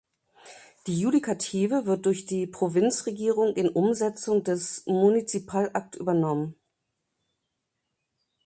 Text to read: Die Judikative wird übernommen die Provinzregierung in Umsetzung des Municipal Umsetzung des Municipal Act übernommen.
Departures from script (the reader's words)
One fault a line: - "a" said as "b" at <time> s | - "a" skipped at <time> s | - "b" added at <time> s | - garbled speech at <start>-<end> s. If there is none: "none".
- "übernommen" said as "durch" at 2.1 s
- "Umsetzung des Municipal" skipped at 5.7 s